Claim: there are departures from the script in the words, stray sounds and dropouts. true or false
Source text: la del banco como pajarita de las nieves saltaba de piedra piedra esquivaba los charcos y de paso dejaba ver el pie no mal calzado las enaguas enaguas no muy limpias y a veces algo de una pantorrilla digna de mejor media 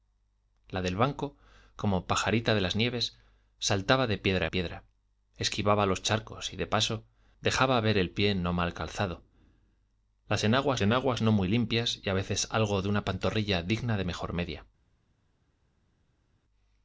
false